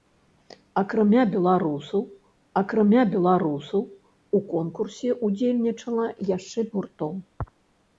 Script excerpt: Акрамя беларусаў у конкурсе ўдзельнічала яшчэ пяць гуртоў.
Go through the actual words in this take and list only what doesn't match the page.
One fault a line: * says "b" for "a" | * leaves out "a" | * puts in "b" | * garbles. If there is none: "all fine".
* puts in "акрамя беларусаў"
* leaves out "пяць"